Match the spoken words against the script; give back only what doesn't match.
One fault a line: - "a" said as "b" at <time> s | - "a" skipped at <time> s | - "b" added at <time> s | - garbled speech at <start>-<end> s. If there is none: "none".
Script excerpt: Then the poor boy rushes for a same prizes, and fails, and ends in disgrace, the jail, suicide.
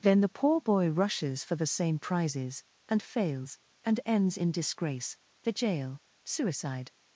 - "a" said as "the" at 1.6 s